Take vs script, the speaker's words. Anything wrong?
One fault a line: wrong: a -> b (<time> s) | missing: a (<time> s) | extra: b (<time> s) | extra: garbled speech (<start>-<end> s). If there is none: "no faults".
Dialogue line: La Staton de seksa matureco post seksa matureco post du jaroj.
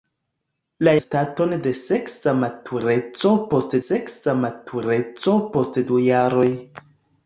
no faults